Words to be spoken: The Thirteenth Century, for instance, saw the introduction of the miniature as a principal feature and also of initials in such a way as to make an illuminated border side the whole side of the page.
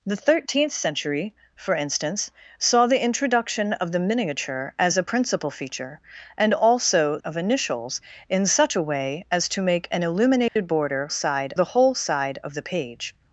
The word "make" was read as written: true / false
true